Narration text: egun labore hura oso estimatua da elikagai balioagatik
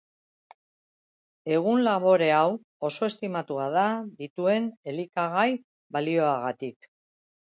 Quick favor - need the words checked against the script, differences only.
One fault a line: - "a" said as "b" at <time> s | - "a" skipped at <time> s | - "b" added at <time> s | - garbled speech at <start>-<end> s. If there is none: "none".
- "hura" said as "hau" at 2.4 s
- "dituen" added at 4.2 s